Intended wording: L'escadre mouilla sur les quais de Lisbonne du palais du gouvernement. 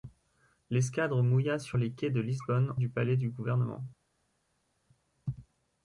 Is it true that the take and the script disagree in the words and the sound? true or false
false